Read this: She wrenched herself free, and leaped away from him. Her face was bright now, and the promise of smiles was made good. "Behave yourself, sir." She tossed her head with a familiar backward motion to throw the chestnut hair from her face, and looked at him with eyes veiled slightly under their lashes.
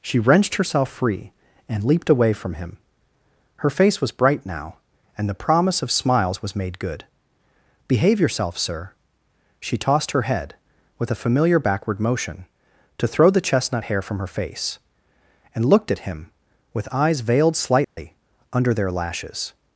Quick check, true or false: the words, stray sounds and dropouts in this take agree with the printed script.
false